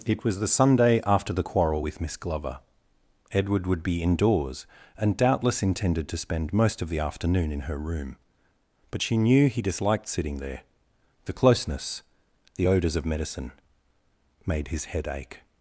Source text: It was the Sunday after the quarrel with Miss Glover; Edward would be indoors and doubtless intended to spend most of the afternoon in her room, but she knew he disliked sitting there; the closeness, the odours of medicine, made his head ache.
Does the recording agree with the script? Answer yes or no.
yes